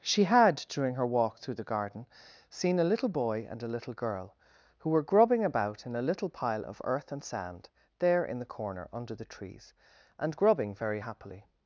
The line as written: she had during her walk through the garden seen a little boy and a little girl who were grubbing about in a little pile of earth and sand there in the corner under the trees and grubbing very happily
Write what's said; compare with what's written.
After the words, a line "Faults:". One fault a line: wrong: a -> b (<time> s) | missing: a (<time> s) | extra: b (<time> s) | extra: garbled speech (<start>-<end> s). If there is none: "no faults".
she had during her walk through the garden seen a little boy and a little girl who were grubbing about in a little pile of earth and sand there in the corner under the trees and grubbing very happily
Faults:
no faults